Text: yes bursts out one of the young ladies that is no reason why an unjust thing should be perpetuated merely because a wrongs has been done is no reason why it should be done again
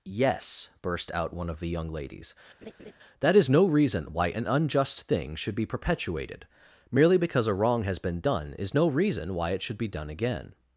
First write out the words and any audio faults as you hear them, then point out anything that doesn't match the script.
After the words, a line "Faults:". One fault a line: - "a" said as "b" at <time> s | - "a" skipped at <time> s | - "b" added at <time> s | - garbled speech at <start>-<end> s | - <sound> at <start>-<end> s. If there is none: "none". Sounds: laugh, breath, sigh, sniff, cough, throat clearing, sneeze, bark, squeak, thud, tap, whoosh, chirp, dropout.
yes burst out one of the young ladies that is no reason why an unjust thing should be perpetuated merely because a wrong has been done is no reason why it should be done again
Faults:
- "bursts" said as "burst" at 0.8 s
- laugh at 2.6-2.9 s
- "wrongs" said as "wrong" at 7.5 s